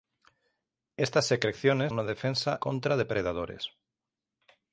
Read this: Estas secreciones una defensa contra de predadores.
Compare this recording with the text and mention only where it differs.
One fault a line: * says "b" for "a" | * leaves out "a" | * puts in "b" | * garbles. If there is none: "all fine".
all fine